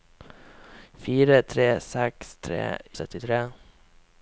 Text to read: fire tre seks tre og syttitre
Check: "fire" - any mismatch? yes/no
no